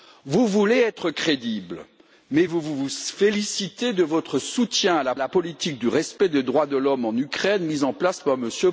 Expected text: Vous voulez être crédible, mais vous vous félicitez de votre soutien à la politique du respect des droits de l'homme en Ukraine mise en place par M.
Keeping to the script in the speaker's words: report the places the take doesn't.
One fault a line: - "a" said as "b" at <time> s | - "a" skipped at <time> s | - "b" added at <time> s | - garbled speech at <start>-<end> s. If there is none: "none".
- "la" added at 5.2 s